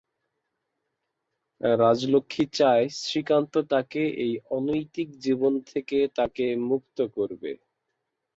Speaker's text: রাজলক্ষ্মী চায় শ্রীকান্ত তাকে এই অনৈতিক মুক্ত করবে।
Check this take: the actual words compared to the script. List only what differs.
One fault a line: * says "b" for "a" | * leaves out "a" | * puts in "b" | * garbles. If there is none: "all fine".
* puts in "জীবন থেকে তাকে"